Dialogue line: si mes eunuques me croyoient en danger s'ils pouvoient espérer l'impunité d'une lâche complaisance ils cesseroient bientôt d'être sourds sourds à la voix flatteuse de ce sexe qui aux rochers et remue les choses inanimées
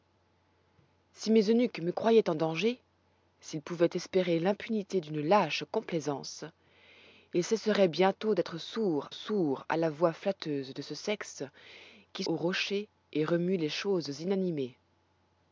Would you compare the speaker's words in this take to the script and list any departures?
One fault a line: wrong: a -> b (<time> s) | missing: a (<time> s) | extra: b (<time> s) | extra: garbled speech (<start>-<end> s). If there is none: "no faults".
no faults